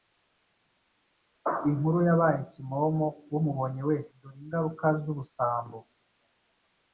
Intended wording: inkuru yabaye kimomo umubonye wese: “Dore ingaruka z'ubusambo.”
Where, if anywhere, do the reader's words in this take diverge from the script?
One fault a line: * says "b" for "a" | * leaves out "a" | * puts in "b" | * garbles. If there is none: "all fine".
all fine